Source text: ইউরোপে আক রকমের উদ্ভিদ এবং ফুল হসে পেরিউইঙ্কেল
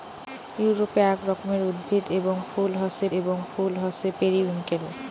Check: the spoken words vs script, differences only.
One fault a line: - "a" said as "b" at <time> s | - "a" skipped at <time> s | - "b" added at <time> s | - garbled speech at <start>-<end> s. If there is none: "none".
- "এবং ফুল হসে" added at 3.2 s